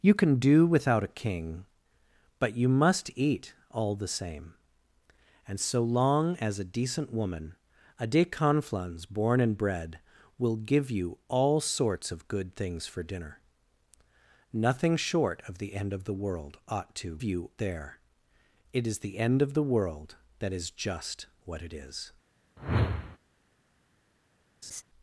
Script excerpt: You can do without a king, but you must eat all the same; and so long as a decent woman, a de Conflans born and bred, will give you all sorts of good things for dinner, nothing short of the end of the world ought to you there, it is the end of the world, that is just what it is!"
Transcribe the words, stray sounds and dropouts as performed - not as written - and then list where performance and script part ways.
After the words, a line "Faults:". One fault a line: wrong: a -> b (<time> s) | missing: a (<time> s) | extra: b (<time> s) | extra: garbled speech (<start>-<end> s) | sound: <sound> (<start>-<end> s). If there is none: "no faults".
You can do without a king, but you must eat all the same; and so long as a decent woman, a de Conflans born and bred, will give you all sorts of good things for dinner, nothing short of the end of the world ought to you there, it is the end of the world, that is just what it is!"
Faults:
sound: whoosh (22.6-23.2 s)
sound: laugh (24.6-24.8 s)